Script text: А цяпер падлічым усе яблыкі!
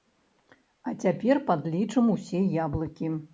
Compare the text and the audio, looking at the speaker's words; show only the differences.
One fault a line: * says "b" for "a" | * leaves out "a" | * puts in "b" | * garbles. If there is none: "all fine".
all fine